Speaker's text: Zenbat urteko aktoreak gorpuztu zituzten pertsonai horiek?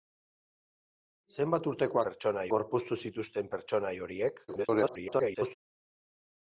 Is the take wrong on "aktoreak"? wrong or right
wrong